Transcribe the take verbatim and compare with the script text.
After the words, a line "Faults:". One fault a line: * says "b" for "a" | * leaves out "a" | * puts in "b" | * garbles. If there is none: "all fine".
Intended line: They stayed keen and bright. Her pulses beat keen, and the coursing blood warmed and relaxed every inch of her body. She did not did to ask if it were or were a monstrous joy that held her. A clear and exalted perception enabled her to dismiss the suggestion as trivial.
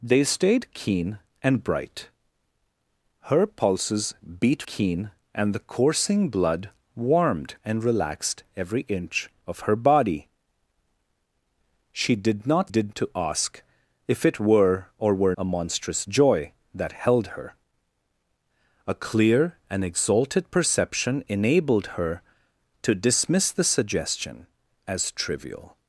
They stayed keen and bright. Her pulses beat keen, and the coursing blood warmed and relaxed every inch of her body. She did not did to ask if it were or were a monstrous joy that held her. A clear and exalted perception enabled her to dismiss the suggestion as trivial.
Faults:
all fine